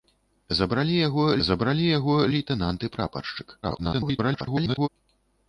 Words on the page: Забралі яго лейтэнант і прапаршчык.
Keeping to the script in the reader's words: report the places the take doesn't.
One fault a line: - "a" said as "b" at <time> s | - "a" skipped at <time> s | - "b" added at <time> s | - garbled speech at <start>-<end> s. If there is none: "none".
- "забралі яго" added at 1.5 s
- garbled speech at 3.6-4.9 s